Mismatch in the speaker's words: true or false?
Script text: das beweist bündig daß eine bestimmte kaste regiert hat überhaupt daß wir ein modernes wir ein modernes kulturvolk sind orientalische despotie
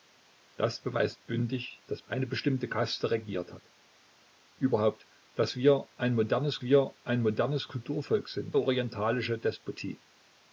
false